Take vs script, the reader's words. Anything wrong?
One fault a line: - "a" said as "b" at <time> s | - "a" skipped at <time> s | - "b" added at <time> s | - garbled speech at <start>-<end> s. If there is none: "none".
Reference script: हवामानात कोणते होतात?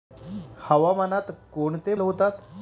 none